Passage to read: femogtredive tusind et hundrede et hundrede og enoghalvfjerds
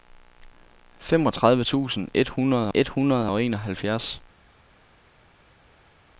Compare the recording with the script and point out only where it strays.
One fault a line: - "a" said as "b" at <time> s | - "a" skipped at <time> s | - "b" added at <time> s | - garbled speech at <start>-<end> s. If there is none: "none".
none